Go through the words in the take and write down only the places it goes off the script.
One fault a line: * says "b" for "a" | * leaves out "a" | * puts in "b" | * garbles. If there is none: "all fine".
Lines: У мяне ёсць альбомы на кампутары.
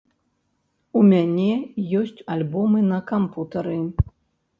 all fine